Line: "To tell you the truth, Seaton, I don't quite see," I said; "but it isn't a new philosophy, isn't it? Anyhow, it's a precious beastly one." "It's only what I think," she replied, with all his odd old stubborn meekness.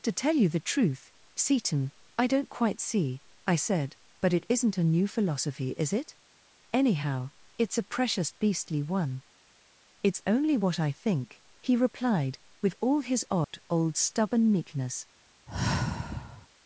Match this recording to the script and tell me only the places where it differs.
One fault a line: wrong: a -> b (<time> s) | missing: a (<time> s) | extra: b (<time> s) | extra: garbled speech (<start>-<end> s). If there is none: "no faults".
wrong: isn't -> is (5.8 s)
wrong: she -> he (11.6 s)